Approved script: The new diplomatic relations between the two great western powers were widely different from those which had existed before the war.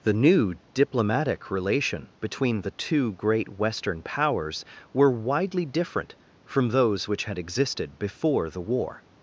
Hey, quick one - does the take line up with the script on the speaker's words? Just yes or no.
no